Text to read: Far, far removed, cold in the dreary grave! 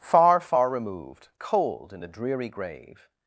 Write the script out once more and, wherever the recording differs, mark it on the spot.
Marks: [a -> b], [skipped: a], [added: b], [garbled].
Far, far removed, cold in the dreary grave!